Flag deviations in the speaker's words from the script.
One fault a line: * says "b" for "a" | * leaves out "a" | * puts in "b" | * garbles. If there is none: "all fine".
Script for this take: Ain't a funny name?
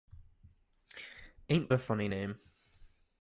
all fine